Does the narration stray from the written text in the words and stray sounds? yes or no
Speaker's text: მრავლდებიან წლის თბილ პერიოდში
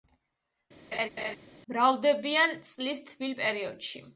yes